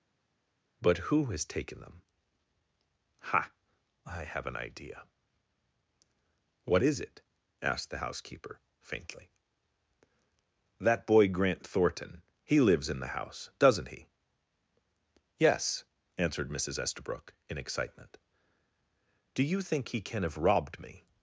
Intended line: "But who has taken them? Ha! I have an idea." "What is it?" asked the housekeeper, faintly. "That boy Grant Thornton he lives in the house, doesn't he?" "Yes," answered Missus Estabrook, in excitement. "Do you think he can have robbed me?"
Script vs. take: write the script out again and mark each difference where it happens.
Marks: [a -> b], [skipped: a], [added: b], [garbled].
"But who has taken them? Ha! I have an idea." "What is it?" asked the housekeeper, faintly. "That boy Grant Thornton he lives in the house, doesn't he?" "Yes," answered Missus Estabrook, in excitement. "Do you think he can have robbed me?"